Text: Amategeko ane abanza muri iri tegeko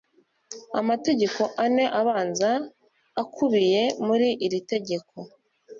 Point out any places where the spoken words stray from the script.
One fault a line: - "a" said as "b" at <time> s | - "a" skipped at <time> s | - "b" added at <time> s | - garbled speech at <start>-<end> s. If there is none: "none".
- "akubiye" added at 3.2 s